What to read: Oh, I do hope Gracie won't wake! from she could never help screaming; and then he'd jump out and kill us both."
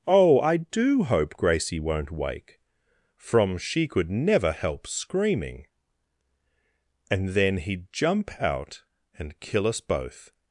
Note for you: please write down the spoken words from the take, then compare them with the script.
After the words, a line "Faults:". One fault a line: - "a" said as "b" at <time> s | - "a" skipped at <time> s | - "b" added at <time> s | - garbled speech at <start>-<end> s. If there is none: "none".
Oh, I do hope Gracie won't wake! from she could never help screaming; and then he'd jump out and kill us both."
Faults:
none